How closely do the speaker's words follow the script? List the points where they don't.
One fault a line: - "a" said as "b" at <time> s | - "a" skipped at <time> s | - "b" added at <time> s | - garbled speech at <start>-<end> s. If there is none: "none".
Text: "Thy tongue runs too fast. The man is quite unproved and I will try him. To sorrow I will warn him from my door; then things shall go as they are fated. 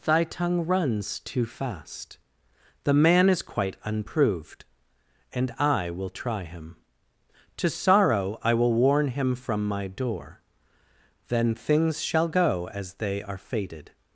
none